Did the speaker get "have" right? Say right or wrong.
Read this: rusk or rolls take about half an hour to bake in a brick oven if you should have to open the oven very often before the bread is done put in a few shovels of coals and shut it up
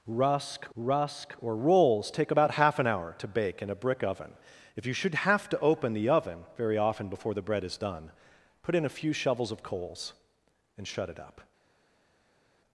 right